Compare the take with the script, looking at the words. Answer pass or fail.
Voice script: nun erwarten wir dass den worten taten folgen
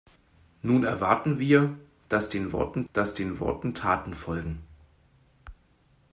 fail